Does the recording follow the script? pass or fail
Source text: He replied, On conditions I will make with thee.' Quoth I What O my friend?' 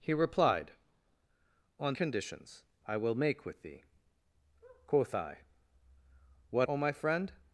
pass